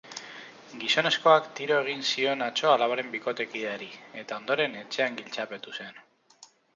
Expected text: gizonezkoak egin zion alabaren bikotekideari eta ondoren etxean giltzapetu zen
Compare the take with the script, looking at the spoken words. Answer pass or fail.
fail